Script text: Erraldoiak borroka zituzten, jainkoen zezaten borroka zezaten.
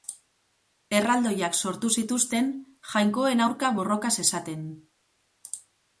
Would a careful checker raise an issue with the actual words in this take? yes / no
yes